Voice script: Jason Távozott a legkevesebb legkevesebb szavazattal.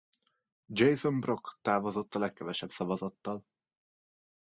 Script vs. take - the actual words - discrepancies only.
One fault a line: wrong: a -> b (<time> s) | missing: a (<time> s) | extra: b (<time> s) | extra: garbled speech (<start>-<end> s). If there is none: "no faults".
extra: Brock (1.2 s)
missing: legkevesebb (2.7 s)